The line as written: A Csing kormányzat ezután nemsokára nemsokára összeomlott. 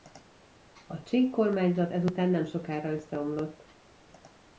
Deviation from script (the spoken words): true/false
true